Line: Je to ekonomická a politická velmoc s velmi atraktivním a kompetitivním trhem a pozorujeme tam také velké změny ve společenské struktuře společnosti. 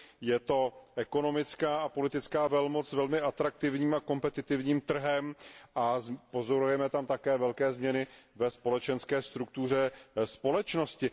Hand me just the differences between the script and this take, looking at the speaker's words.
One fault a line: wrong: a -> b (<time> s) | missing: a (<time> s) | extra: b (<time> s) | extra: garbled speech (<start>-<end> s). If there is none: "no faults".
no faults